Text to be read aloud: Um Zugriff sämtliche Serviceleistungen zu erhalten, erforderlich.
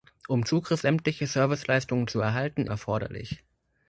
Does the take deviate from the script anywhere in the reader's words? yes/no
no